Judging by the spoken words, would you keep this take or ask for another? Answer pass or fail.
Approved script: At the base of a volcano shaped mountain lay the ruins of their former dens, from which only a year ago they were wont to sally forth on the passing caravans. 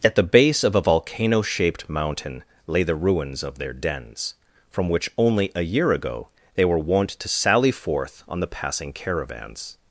fail